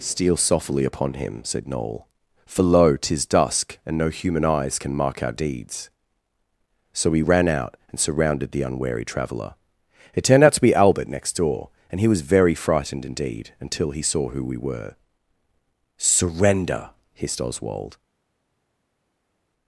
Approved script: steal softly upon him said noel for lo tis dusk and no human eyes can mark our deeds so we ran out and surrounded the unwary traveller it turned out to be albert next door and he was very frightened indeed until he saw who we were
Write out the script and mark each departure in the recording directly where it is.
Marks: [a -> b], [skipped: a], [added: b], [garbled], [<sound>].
steal softly upon him said noel for lo tis dusk and no human eyes can mark our deeds so we ran out and surrounded the unwary traveller it turned out to be albert next door and he was very frightened indeed until he saw who we were [added: surrender hissed oswald]